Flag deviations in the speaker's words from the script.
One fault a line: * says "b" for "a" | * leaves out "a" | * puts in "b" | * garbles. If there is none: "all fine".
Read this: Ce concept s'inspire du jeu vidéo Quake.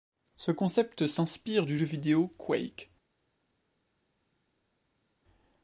all fine